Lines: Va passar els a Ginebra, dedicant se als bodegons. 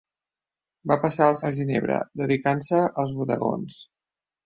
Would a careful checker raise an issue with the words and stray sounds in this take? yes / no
no